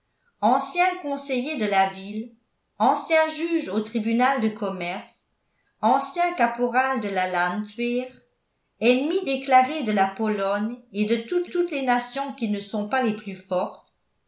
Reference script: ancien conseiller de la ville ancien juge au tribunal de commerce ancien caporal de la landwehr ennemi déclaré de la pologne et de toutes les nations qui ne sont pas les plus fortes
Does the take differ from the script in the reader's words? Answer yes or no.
yes